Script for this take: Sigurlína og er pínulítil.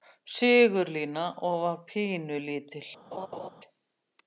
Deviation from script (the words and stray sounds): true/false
true